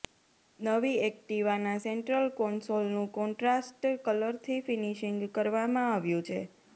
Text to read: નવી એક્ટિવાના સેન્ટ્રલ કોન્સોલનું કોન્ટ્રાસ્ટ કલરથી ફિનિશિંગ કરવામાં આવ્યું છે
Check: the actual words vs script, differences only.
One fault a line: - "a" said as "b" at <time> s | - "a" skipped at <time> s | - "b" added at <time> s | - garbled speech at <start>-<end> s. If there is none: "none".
none